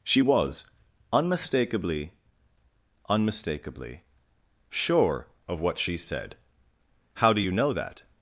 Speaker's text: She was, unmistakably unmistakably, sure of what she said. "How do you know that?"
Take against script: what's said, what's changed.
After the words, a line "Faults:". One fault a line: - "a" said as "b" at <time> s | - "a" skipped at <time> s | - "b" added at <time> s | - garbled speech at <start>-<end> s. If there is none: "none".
She was, unmistakably unmistakably, sure of what she said. "How do you know that?"
Faults:
none